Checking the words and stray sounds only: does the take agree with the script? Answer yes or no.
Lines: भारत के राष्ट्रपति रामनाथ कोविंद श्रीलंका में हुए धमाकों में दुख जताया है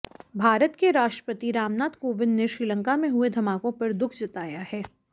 no